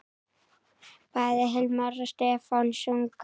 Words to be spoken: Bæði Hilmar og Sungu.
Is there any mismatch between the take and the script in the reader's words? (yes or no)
yes